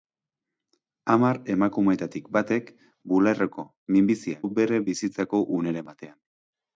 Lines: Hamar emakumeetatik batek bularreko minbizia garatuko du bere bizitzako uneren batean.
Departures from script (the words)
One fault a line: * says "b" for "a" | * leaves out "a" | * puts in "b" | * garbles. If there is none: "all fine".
* leaves out "garatuko"